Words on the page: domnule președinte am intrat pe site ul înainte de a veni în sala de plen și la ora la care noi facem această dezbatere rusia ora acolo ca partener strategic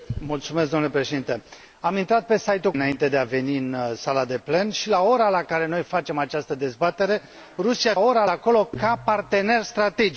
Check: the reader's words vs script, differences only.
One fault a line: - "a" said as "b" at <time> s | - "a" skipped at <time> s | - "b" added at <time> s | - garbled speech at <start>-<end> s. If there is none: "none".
none